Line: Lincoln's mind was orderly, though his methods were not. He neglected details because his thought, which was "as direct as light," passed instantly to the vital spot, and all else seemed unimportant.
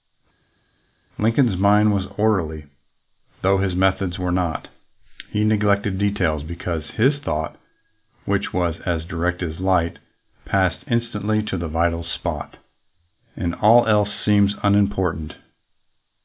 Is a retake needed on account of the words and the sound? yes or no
no